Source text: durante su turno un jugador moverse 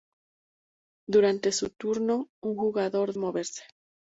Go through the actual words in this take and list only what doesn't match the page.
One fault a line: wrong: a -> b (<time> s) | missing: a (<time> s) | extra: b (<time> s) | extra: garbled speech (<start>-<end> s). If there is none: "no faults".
no faults